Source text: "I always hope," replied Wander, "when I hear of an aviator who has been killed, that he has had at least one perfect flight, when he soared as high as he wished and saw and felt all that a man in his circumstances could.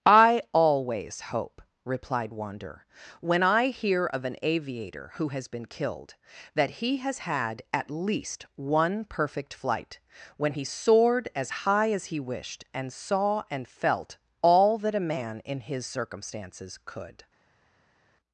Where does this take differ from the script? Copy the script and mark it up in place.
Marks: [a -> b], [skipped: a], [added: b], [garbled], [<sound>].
"I always hope," replied Wander, "when I hear of an aviator who has been killed, that he has had at least one perfect flight, when he soared as high as he wished and saw and felt all that a man in his circumstances could.